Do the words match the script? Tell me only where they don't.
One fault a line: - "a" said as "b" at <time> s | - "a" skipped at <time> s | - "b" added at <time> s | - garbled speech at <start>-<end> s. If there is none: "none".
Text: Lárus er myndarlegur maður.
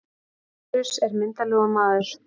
none